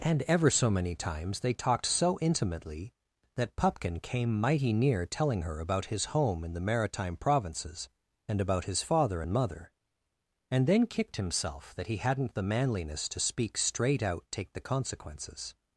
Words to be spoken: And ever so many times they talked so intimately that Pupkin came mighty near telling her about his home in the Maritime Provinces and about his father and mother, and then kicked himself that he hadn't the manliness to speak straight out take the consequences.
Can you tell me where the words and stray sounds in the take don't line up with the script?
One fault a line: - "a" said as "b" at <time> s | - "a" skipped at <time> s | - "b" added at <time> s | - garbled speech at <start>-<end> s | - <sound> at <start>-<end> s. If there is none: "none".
none